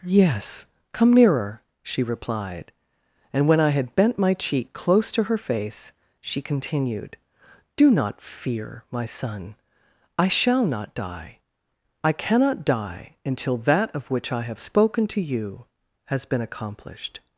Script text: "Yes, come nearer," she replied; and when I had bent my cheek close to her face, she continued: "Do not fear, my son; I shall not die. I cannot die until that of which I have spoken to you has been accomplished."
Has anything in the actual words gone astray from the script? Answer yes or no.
no